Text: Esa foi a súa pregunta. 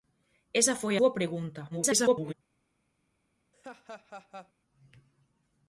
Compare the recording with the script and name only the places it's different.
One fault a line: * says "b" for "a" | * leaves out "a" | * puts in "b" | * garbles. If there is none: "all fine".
* leaves out "a"
* garbles